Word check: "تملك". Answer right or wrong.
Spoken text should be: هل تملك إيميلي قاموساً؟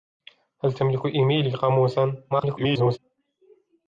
right